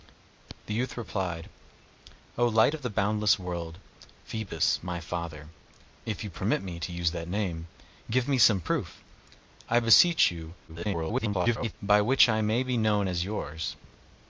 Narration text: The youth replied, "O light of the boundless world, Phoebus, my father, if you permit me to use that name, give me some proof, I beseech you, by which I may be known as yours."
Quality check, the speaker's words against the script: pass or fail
fail